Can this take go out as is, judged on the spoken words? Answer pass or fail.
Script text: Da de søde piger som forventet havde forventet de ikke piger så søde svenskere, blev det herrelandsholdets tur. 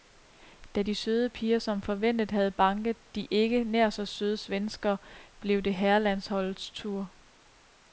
fail